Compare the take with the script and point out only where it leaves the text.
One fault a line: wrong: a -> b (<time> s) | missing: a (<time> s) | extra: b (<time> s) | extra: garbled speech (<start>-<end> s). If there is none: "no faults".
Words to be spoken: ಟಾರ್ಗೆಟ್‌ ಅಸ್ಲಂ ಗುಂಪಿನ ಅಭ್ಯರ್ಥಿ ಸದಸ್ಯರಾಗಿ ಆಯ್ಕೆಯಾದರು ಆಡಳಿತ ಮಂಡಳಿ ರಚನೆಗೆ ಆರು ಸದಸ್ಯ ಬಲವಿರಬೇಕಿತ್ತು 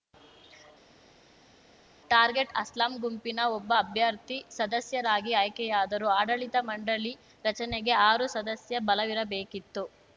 extra: ಒಬ್ಬ (3.5 s)